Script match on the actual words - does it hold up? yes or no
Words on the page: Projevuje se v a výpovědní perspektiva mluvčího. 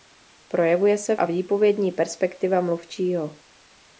yes